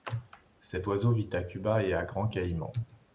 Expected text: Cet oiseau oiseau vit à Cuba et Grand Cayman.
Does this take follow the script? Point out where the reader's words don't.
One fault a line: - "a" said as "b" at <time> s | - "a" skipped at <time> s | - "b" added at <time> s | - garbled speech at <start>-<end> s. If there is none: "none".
- "oiseau" skipped at 1.1 s
- "à" added at 1.9 s